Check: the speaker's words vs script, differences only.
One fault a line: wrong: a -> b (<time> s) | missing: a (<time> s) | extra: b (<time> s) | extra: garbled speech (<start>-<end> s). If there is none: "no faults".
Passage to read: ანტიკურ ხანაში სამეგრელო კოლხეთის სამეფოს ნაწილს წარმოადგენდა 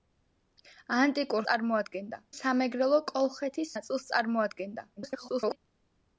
wrong: ხანაში -> წარმოადგენდა (1.5 s)
missing: სამეფოს (3.8 s)
extra: garbled speech (5.0-5.6 s)